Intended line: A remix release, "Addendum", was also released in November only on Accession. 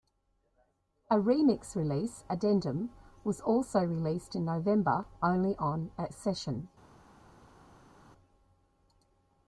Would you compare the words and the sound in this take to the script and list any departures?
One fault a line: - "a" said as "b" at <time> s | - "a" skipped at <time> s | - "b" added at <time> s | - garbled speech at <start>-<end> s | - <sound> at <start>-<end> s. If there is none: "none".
none